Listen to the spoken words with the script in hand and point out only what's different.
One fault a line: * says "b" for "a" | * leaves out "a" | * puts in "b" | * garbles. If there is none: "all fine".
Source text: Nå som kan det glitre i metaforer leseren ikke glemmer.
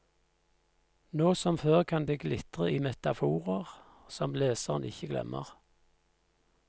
* puts in "før"
* puts in "som"